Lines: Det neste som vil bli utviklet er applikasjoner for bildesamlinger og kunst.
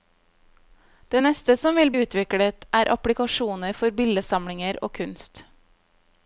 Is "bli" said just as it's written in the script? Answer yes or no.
no